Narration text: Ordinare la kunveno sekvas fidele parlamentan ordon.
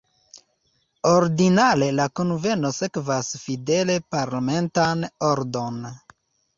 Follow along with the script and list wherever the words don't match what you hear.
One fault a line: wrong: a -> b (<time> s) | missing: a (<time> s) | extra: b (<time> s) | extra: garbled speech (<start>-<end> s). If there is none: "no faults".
no faults